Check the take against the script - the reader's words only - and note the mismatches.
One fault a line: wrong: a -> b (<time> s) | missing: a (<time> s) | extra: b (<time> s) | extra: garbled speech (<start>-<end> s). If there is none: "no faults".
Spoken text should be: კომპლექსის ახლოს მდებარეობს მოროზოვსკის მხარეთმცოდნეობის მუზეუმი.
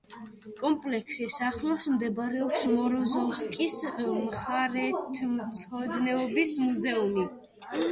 no faults